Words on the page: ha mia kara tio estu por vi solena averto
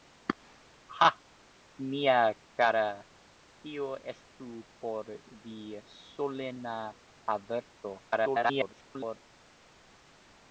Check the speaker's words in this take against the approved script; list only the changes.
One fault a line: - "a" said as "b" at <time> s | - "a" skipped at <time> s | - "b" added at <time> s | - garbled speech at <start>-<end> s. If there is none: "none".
- garbled speech at 8.0-9.3 s